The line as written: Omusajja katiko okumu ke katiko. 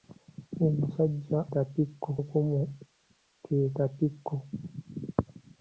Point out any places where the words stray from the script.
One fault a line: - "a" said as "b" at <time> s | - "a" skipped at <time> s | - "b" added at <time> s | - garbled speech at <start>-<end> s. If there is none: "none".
none